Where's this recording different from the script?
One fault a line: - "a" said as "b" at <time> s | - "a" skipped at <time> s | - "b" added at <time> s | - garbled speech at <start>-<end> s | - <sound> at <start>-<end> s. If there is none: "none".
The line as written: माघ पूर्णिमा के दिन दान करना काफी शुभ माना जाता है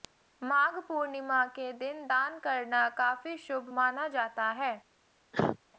- cough at 5.3-5.6 s